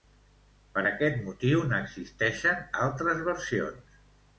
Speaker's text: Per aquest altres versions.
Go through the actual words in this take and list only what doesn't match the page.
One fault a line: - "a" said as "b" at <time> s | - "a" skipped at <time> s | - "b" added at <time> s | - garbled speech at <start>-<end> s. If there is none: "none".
- "motiu n'existeixen" added at 1.3 s